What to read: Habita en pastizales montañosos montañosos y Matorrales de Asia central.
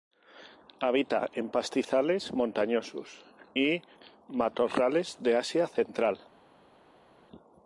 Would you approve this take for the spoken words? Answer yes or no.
no